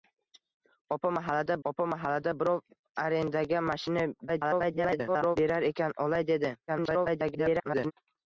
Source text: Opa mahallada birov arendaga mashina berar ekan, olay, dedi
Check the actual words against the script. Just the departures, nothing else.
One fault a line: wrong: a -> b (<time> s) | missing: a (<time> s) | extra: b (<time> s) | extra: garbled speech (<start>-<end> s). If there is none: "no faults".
extra: opa mahallada (1.7 s)
extra: garbled speech (4.3-5.4 s)
extra: garbled speech (6.7-7.9 s)